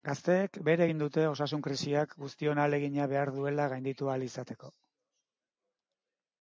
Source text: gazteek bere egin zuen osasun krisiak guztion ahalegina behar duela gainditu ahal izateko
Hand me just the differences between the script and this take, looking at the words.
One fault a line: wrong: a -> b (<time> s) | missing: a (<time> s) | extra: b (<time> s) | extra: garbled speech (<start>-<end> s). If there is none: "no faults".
wrong: zuen -> dute (1.0 s)